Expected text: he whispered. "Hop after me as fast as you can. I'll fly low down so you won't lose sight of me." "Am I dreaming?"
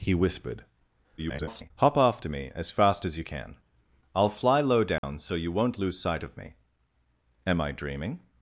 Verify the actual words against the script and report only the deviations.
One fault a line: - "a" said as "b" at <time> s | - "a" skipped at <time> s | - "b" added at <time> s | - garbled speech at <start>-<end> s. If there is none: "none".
- garbled speech at 1.2-1.7 s